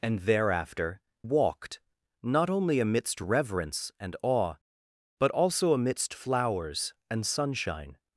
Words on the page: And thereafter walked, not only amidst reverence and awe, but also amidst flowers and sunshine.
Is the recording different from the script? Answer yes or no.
no